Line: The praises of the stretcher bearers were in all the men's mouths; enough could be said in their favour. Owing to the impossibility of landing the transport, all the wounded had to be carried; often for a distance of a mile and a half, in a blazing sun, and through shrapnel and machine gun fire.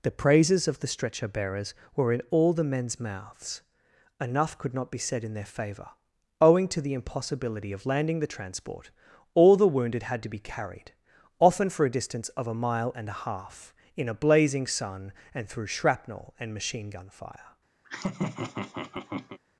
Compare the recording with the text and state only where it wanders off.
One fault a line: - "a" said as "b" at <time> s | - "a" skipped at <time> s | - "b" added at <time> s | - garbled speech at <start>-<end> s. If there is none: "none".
- "not" added at 4.7 s